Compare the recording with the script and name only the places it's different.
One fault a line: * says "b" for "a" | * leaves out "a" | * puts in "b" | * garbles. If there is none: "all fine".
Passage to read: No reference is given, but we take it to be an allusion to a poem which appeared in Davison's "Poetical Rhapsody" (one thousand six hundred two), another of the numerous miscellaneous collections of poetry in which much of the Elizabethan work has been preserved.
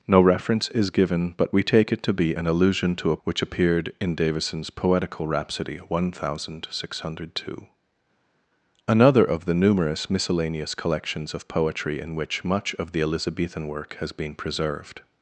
* leaves out "poem"